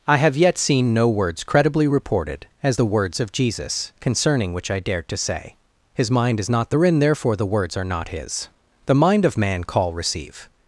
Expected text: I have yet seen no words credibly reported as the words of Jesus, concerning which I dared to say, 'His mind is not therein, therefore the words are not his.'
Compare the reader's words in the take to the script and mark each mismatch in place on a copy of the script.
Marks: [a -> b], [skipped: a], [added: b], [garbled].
I have yet seen no words credibly reported as the words of Jesus, concerning which I dared to say, 'His mind is not therein, therefore the words are not his.' [added: The mind of man call receive]